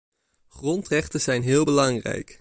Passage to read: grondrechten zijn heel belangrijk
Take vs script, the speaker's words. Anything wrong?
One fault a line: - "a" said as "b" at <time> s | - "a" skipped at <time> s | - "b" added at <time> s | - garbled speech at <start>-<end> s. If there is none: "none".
none